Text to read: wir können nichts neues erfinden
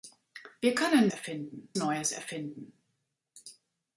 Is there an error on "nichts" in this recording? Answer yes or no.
yes